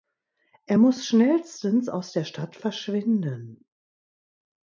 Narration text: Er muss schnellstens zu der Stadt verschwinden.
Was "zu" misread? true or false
true